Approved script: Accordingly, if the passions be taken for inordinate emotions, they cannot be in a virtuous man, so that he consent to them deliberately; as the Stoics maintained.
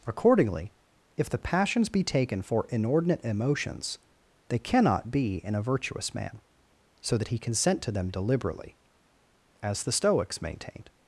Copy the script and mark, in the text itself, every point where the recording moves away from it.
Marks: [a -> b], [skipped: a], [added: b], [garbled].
Accordingly, if the passions be taken for inordinate emotions, they cannot be in a virtuous man, so that he consent to them deliberately; as the Stoics maintained.